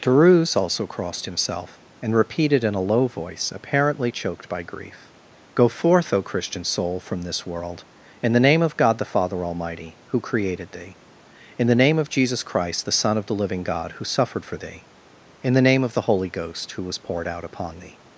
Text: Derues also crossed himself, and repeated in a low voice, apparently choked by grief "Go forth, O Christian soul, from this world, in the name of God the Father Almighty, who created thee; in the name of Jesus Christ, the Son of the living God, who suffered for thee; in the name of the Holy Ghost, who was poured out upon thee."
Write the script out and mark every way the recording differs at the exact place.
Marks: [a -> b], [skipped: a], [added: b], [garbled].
Derues also crossed himself, and repeated in a low voice, apparently choked by grief "Go forth, O Christian soul, from this world, in the name of God the Father Almighty, who created thee; in the name of Jesus Christ, the Son of the living God, who suffered for thee; in the name of the Holy Ghost, who was poured out upon thee."